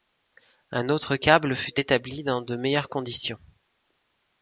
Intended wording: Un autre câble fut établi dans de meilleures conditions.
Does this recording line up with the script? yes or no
yes